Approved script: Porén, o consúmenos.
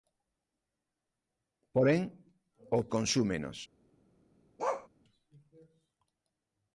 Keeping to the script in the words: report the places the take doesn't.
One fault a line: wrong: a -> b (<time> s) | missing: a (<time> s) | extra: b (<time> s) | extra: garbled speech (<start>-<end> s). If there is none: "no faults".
no faults